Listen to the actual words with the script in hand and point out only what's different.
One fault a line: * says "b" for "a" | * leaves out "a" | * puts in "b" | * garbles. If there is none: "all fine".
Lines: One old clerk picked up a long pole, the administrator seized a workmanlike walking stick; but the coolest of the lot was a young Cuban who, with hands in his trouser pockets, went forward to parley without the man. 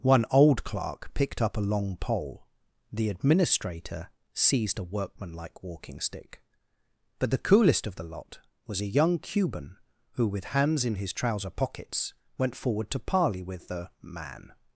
* says "with" for "without"